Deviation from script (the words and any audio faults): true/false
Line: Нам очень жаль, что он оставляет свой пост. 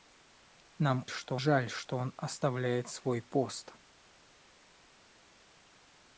true